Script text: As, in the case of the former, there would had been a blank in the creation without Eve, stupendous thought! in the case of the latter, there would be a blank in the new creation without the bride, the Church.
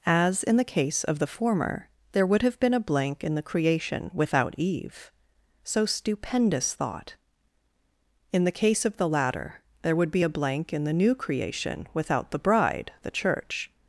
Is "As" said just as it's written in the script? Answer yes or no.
yes